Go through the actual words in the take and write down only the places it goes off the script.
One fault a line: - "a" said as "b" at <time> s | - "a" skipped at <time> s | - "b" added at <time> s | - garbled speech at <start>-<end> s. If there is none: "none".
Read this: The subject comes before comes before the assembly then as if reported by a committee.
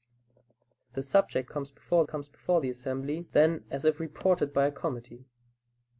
none